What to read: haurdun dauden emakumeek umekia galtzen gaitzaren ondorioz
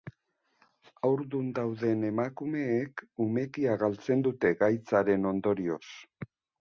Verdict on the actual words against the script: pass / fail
fail